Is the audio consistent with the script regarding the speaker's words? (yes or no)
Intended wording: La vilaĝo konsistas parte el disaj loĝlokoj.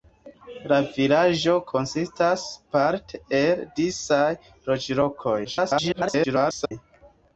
no